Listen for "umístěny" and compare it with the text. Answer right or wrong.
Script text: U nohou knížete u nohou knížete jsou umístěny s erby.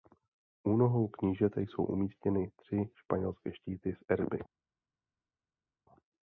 wrong